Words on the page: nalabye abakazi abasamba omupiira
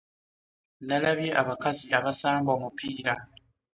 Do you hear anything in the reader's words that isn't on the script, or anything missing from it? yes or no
no